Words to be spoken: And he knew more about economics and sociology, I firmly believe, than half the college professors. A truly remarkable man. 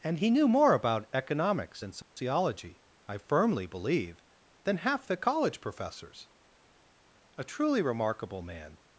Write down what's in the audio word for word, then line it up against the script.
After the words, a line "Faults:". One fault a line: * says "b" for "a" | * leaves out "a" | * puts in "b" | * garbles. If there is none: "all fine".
And he knew more about economics and sociology, I firmly believe, than half the college professors. A truly remarkable man.
Faults:
all fine